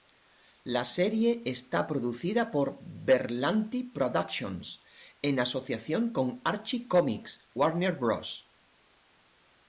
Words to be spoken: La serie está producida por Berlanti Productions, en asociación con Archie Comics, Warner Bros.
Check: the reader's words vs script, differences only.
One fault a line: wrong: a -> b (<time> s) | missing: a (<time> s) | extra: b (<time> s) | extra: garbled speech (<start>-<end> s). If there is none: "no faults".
no faults